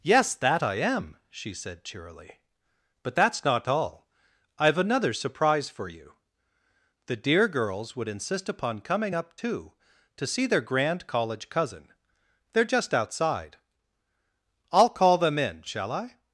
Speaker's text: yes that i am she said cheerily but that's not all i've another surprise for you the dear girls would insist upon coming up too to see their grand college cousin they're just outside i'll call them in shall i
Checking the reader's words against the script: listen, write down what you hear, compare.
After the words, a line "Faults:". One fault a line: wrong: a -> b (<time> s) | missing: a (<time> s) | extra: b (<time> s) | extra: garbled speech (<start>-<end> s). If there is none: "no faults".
yes that i am she said cheerily but that's not all i've another surprise for you the dear girls would insist upon coming up too to see their grand college cousin they're just outside i'll call them in shall i
Faults:
no faults